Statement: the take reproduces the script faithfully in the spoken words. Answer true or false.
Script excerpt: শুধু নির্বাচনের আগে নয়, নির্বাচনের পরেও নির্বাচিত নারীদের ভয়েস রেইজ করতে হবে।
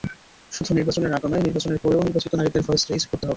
true